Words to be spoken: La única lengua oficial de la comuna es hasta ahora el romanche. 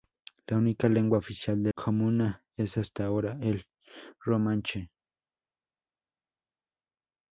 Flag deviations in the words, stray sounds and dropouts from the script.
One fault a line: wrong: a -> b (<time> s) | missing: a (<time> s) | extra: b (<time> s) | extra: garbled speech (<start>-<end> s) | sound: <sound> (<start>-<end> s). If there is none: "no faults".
missing: la (1.7 s)